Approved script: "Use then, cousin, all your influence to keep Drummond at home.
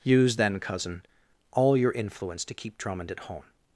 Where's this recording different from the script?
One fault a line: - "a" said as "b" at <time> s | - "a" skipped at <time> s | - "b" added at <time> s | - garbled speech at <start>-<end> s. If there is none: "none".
none